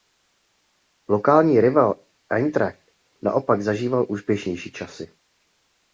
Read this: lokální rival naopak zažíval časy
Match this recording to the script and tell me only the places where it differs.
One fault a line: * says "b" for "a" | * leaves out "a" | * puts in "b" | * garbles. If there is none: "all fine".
* puts in "eintracht"
* puts in "úspěšnější"